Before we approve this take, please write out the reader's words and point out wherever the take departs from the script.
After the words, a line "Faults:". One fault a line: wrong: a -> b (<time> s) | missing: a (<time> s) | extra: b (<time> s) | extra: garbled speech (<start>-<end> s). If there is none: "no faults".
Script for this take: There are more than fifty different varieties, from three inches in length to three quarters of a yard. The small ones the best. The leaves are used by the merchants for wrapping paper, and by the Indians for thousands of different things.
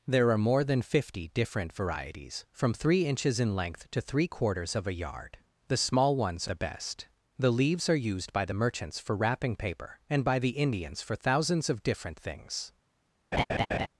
There are more than fifty different varieties, from three inches in length to three quarters of a yard. The small ones the best. The leaves are used by the merchants for wrapping paper, and by the Indians for thousands of different things.
Faults:
no faults